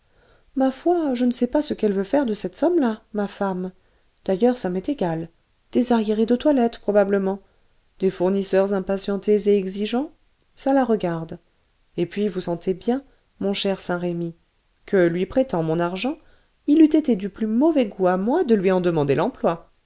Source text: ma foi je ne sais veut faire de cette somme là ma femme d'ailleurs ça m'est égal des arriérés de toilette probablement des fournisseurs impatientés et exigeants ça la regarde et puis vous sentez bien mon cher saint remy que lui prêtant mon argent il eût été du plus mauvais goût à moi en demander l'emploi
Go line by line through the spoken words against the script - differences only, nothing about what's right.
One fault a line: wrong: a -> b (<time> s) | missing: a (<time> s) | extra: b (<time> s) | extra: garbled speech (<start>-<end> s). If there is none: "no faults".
extra: pas ce qu'elle (1.4 s)
extra: de lui (18.4 s)